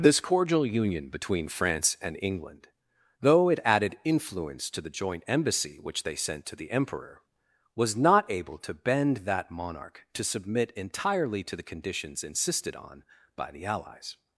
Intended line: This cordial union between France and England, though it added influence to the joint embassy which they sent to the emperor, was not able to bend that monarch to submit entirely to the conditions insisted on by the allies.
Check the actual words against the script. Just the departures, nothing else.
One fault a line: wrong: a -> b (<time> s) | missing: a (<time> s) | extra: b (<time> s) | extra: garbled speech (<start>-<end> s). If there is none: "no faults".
no faults